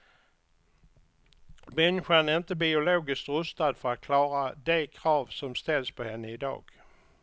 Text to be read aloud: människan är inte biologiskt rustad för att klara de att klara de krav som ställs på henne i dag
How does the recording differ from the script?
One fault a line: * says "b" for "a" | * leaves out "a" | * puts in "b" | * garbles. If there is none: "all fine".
* leaves out "att klara de"